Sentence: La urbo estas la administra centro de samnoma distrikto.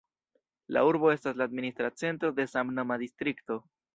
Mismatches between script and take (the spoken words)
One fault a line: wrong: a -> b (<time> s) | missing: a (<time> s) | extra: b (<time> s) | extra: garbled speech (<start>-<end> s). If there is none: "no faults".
no faults